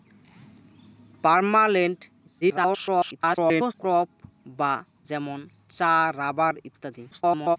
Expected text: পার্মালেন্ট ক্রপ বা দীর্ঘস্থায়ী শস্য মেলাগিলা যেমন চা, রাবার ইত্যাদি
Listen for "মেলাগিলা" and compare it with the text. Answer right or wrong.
wrong